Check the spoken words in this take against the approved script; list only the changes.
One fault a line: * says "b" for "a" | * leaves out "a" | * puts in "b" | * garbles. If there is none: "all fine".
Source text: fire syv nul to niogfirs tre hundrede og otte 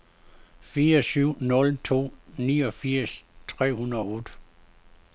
all fine